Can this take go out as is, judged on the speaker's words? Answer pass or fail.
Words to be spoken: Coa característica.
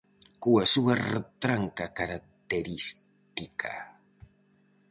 fail